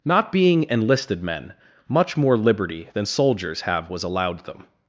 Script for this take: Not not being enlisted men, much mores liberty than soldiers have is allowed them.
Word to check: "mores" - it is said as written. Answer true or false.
false